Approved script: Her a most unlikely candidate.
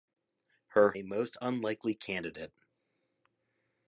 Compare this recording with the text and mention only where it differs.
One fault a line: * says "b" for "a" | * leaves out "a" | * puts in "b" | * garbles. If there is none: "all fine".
all fine